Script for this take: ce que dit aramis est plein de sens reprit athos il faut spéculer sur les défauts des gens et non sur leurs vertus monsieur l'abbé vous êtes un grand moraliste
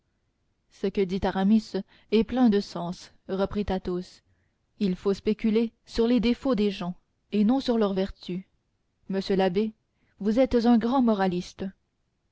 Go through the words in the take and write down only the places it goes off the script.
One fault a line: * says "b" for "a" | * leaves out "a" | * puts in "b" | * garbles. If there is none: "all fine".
all fine